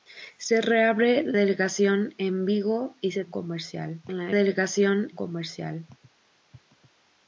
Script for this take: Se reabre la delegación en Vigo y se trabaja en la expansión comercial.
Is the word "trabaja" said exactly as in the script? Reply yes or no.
no